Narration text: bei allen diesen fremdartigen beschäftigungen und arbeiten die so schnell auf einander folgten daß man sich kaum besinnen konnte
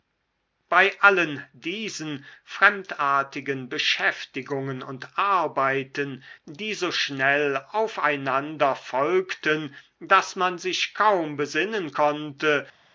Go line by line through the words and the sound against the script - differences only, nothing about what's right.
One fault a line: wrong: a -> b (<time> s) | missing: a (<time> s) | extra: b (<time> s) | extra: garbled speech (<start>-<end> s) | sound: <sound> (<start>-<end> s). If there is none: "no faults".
no faults